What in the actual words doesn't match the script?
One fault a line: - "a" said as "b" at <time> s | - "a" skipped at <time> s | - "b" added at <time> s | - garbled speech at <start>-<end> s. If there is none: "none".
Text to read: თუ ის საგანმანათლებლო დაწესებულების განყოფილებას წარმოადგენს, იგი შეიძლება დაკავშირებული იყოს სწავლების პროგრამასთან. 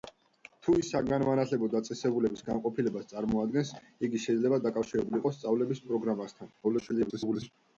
- garbled speech at 6.6-7.5 s